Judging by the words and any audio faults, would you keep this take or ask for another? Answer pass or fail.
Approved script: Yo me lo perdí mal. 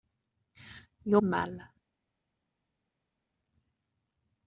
fail